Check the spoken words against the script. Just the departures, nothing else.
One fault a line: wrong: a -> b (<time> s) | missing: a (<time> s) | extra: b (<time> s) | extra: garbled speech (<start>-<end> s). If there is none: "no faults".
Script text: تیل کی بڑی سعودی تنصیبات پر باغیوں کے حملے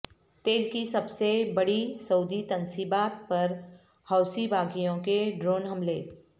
extra: سب سے (0.8 s)
extra: حوثی (4.1 s)
extra: ڈرون (5.4 s)